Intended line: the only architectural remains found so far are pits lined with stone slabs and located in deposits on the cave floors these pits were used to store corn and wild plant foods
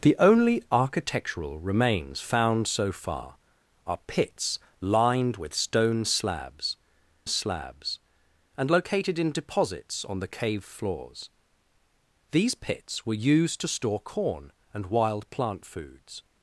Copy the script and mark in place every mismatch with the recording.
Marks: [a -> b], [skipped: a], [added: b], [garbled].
the only architectural remains found so far are pits lined with stone slabs [added: slabs] and located in deposits on the cave floors these pits were used to store corn and wild plant foods